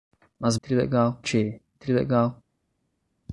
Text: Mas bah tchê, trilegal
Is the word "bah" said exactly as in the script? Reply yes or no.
no